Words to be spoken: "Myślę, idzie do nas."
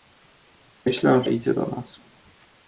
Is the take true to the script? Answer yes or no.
yes